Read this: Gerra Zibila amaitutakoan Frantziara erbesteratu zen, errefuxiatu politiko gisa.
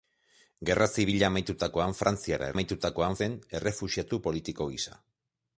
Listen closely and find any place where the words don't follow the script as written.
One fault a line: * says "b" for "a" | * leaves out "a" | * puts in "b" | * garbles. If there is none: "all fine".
* says "amaitutakoan" for "erbesteratu"